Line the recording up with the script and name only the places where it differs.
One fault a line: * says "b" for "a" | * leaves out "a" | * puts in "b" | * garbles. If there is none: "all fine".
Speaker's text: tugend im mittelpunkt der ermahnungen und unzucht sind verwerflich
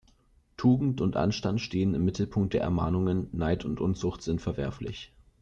* puts in "und anstand stehen"
* puts in "neid"